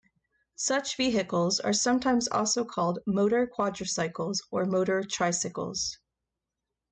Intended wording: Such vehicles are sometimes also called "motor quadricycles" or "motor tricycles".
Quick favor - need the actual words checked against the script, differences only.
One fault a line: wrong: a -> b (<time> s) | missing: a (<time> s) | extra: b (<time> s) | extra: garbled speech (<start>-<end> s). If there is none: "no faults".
no faults